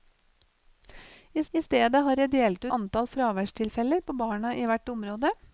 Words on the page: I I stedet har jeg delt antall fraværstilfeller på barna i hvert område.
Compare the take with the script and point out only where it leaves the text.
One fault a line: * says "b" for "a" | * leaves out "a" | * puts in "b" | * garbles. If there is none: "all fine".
all fine